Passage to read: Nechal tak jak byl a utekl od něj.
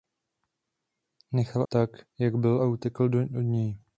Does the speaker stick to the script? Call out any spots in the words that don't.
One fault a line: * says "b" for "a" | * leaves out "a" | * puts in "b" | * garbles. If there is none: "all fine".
all fine